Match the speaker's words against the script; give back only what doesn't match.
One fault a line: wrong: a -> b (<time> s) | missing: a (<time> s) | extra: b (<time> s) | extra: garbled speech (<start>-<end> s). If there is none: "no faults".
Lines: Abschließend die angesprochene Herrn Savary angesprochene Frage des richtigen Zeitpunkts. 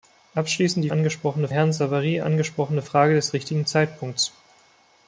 no faults